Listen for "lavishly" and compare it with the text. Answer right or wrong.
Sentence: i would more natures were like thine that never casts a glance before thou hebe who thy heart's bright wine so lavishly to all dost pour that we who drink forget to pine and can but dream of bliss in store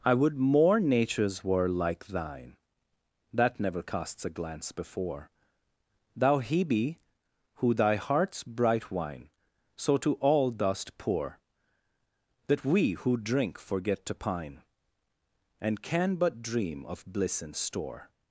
wrong